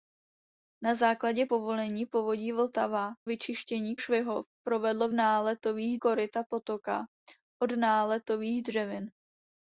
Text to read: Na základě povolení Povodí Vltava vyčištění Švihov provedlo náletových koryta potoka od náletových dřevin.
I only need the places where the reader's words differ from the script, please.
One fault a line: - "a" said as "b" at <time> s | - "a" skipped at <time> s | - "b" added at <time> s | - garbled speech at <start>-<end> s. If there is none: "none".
none